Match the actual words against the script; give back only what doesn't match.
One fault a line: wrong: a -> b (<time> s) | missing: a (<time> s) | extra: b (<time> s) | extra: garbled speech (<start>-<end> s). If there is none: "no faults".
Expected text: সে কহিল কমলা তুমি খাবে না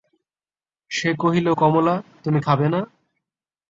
no faults